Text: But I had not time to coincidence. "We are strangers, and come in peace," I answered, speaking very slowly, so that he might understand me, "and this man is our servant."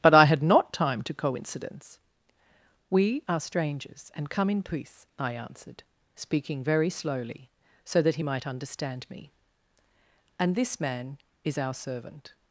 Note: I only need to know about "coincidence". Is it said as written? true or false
true